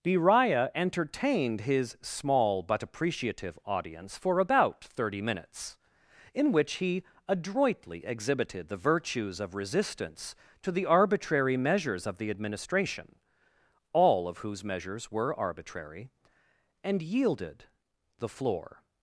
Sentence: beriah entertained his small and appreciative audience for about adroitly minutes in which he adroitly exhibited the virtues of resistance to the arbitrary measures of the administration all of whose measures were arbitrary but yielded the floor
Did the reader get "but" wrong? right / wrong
wrong